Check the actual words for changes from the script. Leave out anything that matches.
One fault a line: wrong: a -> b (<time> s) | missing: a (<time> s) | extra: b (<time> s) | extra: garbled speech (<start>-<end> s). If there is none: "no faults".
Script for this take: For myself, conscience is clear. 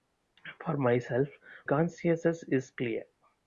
no faults